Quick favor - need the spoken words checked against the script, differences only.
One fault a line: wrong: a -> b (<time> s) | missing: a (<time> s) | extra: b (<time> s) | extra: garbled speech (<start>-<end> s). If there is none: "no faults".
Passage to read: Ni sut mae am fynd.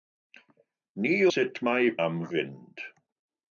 no faults